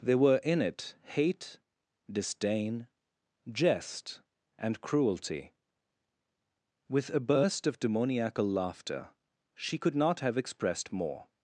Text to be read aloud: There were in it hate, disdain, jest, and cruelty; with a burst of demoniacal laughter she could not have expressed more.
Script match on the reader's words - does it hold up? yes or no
yes